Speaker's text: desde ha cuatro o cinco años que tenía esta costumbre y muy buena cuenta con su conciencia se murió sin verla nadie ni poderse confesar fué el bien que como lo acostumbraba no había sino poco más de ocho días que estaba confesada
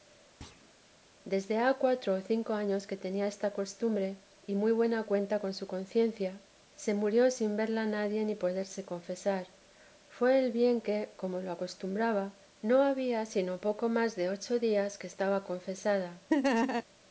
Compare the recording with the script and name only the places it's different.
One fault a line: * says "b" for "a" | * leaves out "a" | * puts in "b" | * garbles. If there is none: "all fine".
all fine